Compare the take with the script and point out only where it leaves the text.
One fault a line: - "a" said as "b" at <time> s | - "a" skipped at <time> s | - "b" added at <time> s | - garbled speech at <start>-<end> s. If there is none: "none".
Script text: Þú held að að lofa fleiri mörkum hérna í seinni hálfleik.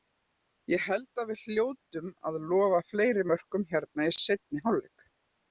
- "Þú" said as "Ég" at 0.7 s
- "við hljótum" added at 1.3 s